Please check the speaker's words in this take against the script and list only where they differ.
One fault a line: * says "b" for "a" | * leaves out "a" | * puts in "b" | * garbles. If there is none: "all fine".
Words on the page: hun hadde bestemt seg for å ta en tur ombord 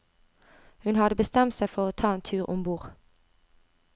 all fine